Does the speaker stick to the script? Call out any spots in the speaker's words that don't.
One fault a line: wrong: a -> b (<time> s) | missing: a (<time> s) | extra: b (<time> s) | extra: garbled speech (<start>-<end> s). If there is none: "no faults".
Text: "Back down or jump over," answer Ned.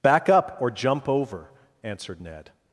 wrong: down -> up (0.3 s)
wrong: answer -> answered (1.8 s)